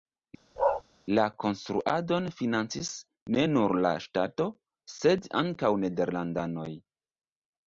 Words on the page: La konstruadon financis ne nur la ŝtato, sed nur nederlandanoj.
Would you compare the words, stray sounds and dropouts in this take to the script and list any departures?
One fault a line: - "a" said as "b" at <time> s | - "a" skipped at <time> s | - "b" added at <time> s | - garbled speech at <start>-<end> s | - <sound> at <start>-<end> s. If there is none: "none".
- bark at 0.6-0.8 s
- "nur" said as "ankaŭ" at 5.4 s